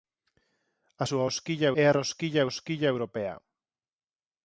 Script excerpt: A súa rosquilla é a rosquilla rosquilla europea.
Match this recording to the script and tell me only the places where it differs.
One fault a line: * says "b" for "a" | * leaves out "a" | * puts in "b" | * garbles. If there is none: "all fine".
all fine